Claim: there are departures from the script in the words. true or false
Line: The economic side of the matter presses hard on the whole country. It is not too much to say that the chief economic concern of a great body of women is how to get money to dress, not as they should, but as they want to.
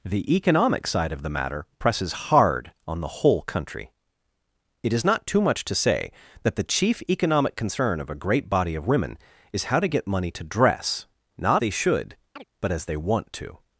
true